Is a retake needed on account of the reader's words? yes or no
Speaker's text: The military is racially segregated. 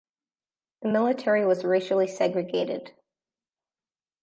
yes